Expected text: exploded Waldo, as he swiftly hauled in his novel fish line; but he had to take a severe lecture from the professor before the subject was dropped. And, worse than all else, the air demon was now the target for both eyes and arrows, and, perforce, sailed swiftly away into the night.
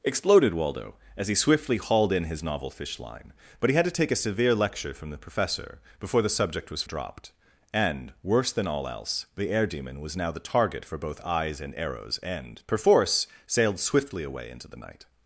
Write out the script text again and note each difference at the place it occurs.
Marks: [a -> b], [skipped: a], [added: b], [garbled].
exploded Waldo, as he swiftly hauled in his novel fish line; but he had to take a severe lecture from the professor before the subject was dropped. And, worse than all else, the air demon was now the target for both eyes and arrows, and, perforce, sailed swiftly away into the night.